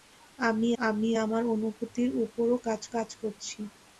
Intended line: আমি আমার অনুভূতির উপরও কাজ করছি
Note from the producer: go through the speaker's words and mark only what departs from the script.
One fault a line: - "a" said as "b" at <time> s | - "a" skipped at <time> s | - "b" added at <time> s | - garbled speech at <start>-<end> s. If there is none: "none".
- "আমি" added at 0.8 s
- "কাজ" added at 2.9 s